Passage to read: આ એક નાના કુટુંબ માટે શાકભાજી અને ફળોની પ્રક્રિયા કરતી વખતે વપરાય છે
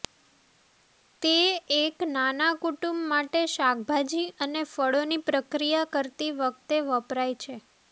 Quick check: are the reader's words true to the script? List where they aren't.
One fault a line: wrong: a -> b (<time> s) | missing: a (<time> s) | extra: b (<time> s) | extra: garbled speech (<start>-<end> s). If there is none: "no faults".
wrong: આ -> તે (1.2 s)